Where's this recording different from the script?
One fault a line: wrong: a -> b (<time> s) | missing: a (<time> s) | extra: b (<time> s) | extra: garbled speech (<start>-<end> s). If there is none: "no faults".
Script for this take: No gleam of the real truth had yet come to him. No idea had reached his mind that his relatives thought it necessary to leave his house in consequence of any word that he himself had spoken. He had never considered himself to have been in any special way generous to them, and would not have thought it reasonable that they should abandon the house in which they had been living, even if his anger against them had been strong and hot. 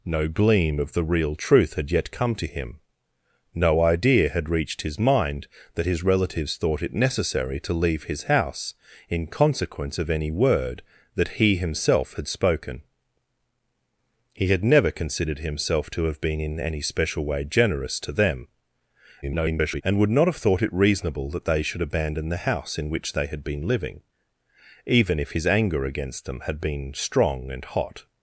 extra: garbled speech (19.2-19.8 s)